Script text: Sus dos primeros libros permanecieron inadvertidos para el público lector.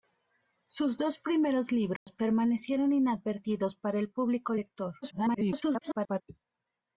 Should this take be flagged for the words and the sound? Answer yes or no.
yes